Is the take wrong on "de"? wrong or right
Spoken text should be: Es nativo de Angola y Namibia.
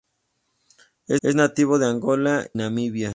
right